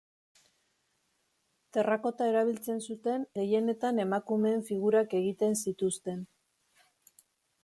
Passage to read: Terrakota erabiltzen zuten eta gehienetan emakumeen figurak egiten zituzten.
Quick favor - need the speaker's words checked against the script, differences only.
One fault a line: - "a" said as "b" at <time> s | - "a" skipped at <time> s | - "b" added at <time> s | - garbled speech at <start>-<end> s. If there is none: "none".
- "eta" skipped at 3.3 s